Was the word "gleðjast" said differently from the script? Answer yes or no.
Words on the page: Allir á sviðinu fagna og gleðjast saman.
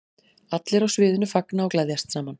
no